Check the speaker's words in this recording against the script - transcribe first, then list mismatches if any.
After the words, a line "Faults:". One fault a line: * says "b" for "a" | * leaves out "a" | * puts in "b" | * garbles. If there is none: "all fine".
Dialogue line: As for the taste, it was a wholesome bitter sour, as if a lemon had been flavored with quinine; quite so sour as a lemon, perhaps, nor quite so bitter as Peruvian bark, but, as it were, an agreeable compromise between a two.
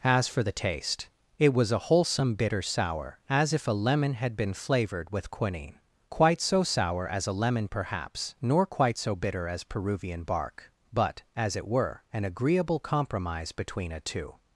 As for the taste, it was a wholesome bitter sour, as if a lemon had been flavored with quinine; quite so sour as a lemon, perhaps, nor quite so bitter as Peruvian bark, but, as it were, an agreeable compromise between a two.
Faults:
all fine